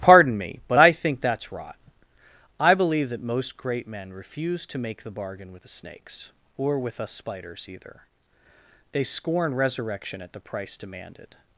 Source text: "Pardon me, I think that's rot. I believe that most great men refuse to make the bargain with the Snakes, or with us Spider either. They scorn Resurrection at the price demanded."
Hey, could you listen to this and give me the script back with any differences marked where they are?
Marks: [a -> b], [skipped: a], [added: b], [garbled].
"Pardon me, [added: but] I think that's rot. I believe that most great men refuse to make the bargain with the Snakes, or with us [Spider -> Spiders] either. They scorn Resurrection at the price demanded."